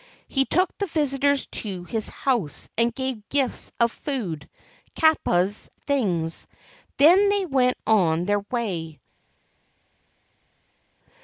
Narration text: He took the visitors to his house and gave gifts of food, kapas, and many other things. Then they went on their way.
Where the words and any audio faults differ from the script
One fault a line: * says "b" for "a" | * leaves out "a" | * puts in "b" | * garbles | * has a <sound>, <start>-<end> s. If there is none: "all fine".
* leaves out "and many other"